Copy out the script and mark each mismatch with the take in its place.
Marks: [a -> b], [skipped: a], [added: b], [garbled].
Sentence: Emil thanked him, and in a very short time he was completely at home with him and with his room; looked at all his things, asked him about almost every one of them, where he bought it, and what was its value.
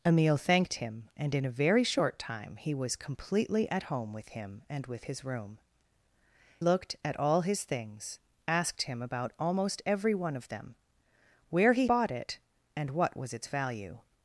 Emil thanked him, and in a very short time he was completely at home with him and with his room; looked at all his things, asked him about almost every one of them, where he bought it, and what was its value.